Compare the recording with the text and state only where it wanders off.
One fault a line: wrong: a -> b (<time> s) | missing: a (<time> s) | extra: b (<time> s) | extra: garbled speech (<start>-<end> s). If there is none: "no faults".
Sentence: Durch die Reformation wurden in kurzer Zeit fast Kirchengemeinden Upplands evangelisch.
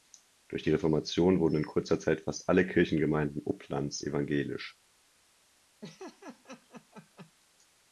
extra: alle (2.5 s)